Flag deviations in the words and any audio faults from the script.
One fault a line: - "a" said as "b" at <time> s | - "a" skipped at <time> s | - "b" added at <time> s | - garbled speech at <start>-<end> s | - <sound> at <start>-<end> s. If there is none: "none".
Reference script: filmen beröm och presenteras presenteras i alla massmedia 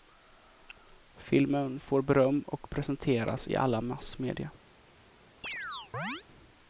- "får" added at 1.8 s
- "presenteras" skipped at 3.5 s
- chirp at 5.4-6.2 s